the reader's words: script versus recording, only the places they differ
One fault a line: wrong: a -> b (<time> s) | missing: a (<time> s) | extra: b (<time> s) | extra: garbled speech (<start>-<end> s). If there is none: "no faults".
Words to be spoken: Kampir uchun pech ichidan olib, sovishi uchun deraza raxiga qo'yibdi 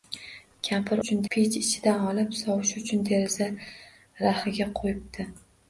no faults